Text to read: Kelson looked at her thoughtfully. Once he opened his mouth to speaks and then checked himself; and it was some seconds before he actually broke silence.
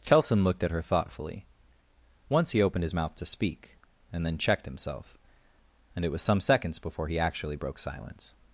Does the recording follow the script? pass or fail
fail